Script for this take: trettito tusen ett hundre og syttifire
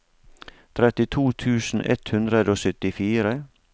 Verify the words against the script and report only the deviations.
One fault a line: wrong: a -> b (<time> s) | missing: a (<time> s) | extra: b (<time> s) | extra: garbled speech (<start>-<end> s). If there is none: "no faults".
no faults